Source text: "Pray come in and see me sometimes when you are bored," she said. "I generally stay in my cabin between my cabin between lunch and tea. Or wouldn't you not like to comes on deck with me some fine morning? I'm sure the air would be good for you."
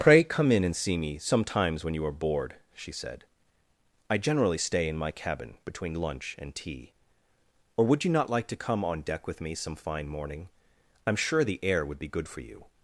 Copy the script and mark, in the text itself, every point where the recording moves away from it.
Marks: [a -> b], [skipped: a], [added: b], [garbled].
"Pray come in and see me sometimes when you are bored," she said. "I generally stay in my cabin between [skipped: my cabin between] lunch and tea. Or [wouldn't -> would] you not like to [comes -> come] on deck with me some fine morning? I'm sure the air would be good for you."